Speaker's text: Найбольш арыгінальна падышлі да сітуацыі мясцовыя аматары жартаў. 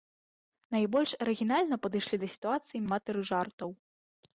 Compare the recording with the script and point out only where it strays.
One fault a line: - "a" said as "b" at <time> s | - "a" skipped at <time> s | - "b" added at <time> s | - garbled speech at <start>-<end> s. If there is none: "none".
- "мясцовыя" skipped at 2.9 s